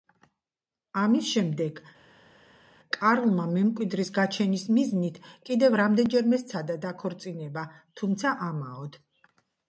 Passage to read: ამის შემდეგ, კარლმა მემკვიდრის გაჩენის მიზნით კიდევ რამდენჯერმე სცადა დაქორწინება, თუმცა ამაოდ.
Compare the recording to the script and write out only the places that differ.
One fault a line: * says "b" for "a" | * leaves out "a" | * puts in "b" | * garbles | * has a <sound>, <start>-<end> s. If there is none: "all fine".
all fine